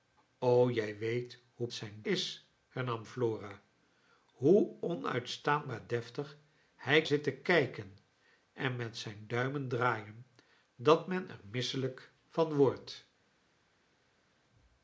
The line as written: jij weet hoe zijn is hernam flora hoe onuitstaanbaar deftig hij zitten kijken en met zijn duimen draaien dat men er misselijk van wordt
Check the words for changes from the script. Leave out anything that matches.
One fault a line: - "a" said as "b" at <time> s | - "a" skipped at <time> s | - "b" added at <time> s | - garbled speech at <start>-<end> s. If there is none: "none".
none